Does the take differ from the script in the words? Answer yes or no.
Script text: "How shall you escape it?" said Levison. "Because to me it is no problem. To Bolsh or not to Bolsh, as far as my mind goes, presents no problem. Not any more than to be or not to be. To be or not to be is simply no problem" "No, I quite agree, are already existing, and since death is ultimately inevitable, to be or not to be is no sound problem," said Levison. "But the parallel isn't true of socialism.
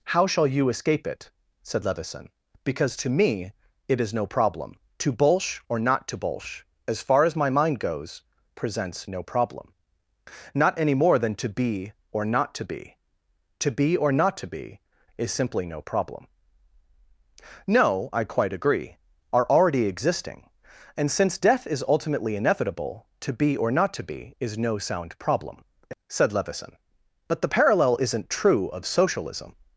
no